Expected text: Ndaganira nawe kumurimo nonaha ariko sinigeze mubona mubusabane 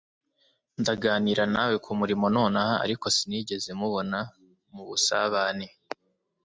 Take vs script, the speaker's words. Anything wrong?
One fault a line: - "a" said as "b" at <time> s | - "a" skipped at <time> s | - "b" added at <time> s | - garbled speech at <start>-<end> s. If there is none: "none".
none